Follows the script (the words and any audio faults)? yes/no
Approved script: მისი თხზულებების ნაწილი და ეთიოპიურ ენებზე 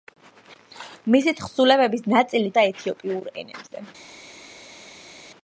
yes